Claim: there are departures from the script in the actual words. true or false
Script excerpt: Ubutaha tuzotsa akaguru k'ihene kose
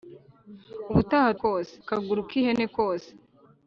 true